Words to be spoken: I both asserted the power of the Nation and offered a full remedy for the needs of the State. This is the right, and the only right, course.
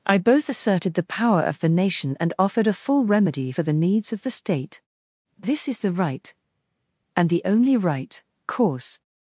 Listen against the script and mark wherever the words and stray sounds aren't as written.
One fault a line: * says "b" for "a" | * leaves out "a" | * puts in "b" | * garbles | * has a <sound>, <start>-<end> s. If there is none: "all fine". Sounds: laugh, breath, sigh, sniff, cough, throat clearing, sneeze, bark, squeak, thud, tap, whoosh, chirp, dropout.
all fine